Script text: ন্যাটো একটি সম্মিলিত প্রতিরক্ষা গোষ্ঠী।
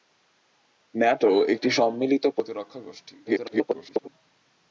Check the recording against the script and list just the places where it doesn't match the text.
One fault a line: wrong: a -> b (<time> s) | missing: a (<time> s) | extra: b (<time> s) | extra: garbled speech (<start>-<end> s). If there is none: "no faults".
extra: garbled speech (3.2-4.1 s)